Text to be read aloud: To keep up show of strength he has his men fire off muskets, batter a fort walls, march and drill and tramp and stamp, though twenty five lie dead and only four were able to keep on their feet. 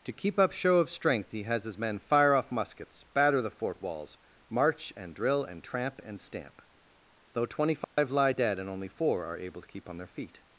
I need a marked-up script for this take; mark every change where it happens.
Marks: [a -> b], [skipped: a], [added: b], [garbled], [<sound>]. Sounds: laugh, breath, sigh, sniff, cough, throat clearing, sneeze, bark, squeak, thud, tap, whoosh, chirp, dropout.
To keep up show of strength he has his men fire off muskets, batter [a -> the] fort walls, march and drill and tramp and stamp, though twenty five [dropout] lie dead and only four [were -> are] able to keep on their feet.